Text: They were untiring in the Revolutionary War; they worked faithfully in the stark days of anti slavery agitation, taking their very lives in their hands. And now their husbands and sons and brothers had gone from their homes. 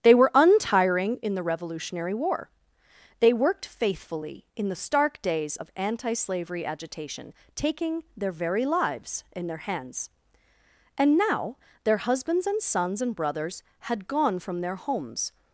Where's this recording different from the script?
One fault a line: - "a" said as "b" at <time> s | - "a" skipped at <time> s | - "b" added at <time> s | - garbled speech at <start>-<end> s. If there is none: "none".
none